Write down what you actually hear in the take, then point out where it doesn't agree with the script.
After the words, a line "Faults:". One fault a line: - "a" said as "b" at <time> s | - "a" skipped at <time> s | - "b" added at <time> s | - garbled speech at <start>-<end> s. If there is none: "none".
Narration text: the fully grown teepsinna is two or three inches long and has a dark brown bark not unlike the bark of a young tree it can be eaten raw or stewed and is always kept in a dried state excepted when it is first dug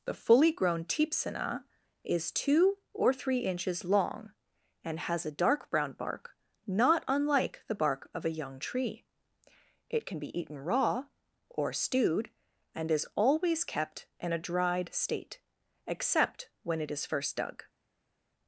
the fully grown teepsinna is two or three inches long and has a dark brown bark not unlike the bark of a young tree it can be eaten raw or stewed and is always kept in a dried state except when it is first dug
Faults:
- "excepted" said as "except" at 15.8 s